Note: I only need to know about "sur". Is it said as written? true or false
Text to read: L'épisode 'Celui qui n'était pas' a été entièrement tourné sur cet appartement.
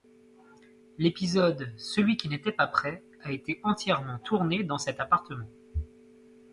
false